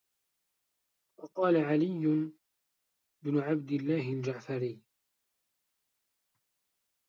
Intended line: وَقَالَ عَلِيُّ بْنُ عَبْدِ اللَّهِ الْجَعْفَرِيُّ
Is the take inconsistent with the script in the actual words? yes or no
no